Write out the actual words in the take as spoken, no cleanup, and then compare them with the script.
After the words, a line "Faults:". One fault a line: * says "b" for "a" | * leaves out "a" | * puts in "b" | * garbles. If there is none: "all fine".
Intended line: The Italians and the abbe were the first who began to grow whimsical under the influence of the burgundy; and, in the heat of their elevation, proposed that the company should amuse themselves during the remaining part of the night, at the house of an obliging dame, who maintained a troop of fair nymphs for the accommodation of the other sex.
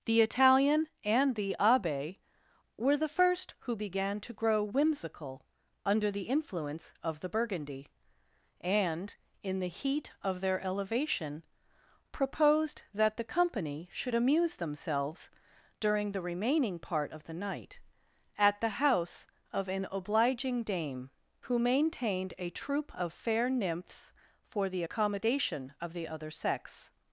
The Italian and the abbe were the first who began to grow whimsical under the influence of the burgundy; and, in the heat of their elevation, proposed that the company should amuse themselves during the remaining part of the night, at the house of an obliging dame, who maintained a troop of fair nymphs for the accommodation of the other sex.
Faults:
* says "Italian" for "Italians"